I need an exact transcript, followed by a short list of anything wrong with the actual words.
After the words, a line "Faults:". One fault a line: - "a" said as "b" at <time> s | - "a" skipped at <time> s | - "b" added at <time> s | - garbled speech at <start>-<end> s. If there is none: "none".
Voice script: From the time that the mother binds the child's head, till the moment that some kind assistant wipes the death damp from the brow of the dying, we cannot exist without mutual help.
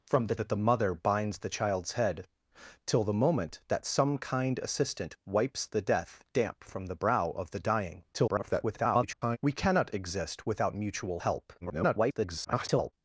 From the that the mother binds the child's head, till the moment that some kind assistant wipes the death damp from the brow of the dying, [garbled] we cannot exist without mutual help. [garbled]
Faults:
- "time" skipped at 0.3 s
- garbled speech at 8.1-9.4 s
- garbled speech at 11.6-12.9 s